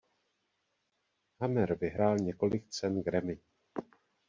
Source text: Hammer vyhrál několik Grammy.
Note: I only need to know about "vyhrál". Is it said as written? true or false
true